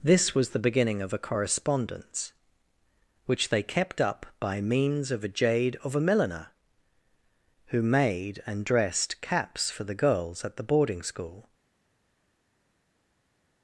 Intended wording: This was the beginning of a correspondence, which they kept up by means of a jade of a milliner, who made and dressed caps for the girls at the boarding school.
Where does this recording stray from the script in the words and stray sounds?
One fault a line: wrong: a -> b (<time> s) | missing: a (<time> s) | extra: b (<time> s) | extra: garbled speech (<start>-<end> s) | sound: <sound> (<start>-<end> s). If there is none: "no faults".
no faults